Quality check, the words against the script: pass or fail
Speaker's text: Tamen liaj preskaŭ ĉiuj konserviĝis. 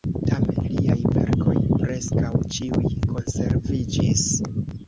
fail